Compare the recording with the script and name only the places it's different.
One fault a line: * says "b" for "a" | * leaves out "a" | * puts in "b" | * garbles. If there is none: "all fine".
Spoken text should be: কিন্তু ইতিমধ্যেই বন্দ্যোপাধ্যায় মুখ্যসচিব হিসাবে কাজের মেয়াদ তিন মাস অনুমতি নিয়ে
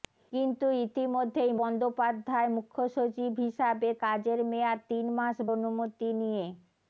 all fine